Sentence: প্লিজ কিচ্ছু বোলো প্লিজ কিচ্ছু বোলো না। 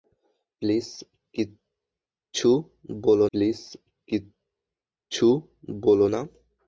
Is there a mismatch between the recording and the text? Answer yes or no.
no